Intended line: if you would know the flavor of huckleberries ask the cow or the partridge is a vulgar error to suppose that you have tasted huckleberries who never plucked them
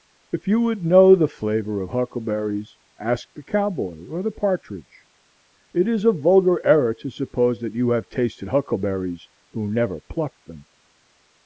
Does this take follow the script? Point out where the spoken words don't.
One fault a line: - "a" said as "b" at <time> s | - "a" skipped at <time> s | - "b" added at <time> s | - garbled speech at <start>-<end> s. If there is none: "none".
- "boy" added at 3.7 s
- "it" added at 5.8 s